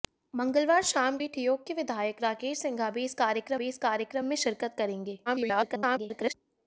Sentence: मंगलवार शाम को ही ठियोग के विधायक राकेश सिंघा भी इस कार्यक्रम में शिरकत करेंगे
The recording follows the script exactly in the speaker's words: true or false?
false